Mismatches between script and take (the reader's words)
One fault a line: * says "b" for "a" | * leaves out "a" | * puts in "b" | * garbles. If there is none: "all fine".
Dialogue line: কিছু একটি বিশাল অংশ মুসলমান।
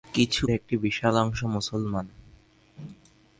all fine